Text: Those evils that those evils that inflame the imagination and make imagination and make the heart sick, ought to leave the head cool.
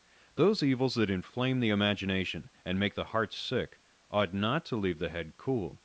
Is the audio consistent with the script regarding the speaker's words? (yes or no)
no